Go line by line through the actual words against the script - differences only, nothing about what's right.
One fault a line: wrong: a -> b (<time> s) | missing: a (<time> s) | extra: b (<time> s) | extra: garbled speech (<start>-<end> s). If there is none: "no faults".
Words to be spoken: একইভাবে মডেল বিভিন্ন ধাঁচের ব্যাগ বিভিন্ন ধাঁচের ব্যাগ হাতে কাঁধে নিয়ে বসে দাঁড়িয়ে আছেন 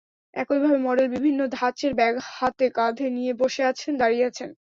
missing: বিভিন্ন ধাঁচের ব্যাগ (2.1 s)
extra: আছেন (3.6 s)